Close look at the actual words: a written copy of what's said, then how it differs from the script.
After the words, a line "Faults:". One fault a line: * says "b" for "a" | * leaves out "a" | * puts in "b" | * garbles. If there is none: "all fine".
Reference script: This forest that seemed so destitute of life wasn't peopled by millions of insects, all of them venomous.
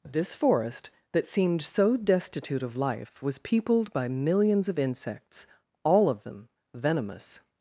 This forest that seemed so destitute of life was peopled by millions of insects, all of them venomous.
Faults:
* says "was" for "wasn't"